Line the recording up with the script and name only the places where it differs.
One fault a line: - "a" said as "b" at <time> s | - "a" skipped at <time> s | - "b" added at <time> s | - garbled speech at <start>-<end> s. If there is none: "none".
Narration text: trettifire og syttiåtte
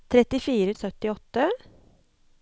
none